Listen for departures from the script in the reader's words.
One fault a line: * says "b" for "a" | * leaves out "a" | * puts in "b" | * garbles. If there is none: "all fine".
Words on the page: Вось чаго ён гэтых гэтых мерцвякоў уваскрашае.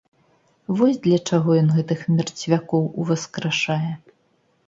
* puts in "для"
* leaves out "гэтых"